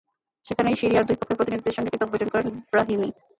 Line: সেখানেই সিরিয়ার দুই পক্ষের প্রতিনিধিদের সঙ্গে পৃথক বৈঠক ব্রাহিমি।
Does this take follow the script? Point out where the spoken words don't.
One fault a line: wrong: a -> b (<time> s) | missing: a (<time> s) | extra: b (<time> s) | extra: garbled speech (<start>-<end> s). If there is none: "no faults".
extra: করেন (2.3 s)